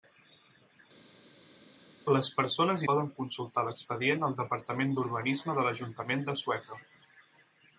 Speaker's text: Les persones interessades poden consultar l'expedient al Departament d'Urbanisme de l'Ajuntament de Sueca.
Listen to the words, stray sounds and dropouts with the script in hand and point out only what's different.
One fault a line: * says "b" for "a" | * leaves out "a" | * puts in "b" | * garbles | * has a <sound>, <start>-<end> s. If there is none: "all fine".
* leaves out "interessades"